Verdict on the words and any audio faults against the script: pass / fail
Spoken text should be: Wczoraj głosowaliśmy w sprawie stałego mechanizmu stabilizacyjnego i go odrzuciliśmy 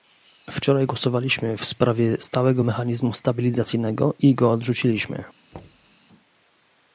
fail